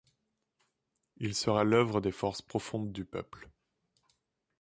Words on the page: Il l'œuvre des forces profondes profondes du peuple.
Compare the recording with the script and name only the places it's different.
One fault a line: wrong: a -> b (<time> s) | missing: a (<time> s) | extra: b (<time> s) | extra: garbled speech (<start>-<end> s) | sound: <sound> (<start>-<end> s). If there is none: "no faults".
extra: sera (1.4 s)
missing: profondes (2.9 s)